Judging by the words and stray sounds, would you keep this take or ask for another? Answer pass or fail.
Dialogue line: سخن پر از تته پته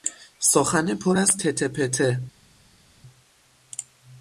pass